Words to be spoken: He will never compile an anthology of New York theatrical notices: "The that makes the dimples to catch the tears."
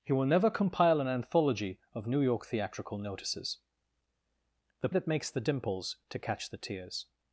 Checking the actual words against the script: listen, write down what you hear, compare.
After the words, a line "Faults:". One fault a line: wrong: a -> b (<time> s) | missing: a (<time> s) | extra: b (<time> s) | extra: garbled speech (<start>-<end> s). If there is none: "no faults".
He will never compile an anthology of New York theatrical notices: "The that makes the dimples to catch the tears."
Faults:
no faults